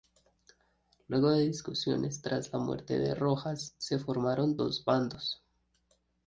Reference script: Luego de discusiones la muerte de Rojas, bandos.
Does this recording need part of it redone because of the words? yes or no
yes